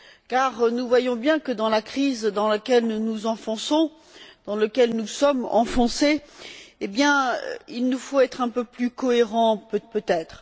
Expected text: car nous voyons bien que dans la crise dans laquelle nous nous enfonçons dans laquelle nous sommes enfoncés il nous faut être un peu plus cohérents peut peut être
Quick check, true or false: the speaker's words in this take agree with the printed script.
true